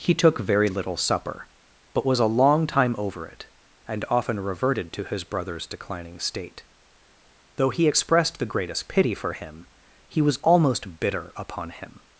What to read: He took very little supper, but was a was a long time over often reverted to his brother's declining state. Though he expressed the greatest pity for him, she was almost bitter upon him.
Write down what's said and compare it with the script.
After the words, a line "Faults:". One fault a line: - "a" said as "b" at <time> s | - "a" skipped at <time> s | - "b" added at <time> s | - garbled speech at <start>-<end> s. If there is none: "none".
He took very little supper, but was a long time over it, and often reverted to his brother's declining state. Though he expressed the greatest pity for him, he was almost bitter upon him.
Faults:
- "was a" skipped at 2.3 s
- "it and" added at 3.3 s
- "she" said as "he" at 10.1 s